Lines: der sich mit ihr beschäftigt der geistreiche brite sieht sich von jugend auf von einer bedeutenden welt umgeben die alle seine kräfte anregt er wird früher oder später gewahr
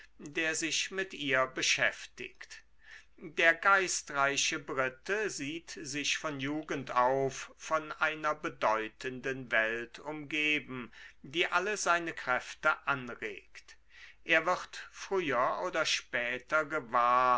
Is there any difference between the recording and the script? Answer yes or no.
no